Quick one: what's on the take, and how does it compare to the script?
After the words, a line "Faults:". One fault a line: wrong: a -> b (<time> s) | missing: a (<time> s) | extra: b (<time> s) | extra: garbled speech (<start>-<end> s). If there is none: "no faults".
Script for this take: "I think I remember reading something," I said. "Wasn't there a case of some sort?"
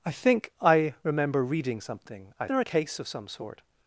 "I think I remember reading something," I there a case of some sort?"
Faults:
missing: said Wasn't (2.5 s)